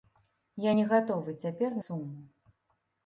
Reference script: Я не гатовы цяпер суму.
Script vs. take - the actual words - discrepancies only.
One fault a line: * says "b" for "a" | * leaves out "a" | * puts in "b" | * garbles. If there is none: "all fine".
all fine